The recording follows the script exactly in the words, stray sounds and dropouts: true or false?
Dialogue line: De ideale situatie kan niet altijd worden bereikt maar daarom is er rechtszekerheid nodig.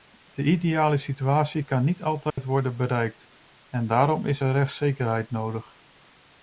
false